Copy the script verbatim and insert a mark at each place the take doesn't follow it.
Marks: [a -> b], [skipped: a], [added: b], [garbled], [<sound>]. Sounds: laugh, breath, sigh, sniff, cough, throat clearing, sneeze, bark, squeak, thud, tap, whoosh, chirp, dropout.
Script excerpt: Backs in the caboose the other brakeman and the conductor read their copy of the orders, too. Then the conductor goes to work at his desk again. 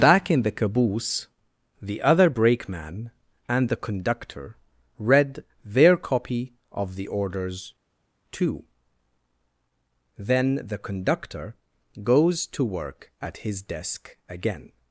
[Backs -> Back] in the caboose the other brakeman and the conductor read their copy of the orders, too. Then the conductor goes to work at his desk again.